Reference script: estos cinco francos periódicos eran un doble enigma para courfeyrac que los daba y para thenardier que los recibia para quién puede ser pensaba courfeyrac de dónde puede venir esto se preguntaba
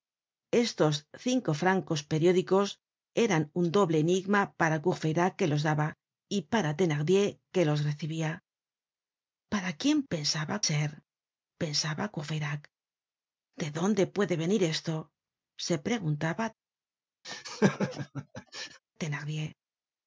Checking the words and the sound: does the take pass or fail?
fail